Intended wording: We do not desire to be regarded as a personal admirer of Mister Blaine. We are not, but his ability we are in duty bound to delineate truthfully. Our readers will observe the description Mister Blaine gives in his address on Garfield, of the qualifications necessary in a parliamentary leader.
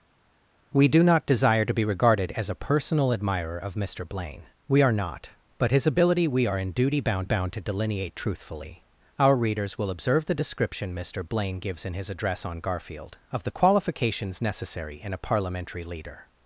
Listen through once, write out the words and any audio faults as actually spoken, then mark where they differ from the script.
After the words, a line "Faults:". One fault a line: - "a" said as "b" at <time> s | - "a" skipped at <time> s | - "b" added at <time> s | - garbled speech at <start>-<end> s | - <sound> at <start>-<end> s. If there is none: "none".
We do not desire to be regarded as a personal admirer of Mister Blaine. We are not, but his ability we are in duty bound bound to delineate truthfully. Our readers will observe the description Mister Blaine gives in his address on Garfield, of the qualifications necessary in a parliamentary leader.
Faults:
- "bound" added at 7.2 s